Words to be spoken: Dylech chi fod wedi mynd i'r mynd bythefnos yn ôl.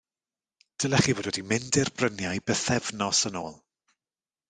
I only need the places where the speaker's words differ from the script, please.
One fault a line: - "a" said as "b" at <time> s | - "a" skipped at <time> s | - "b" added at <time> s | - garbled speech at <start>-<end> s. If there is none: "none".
- "mynd" said as "bryniau" at 2.0 s